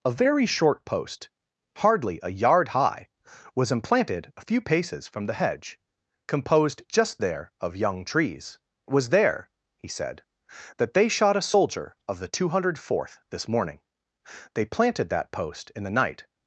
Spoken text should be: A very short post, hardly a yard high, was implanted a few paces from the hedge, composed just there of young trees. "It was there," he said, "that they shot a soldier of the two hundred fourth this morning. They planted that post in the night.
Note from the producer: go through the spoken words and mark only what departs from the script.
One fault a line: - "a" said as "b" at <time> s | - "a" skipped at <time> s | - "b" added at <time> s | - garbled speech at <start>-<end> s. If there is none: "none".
- "It" skipped at 8.6 s